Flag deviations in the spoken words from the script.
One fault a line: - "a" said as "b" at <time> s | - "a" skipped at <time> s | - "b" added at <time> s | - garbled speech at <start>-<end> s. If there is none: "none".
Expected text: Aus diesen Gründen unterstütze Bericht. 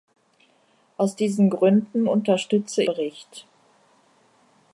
none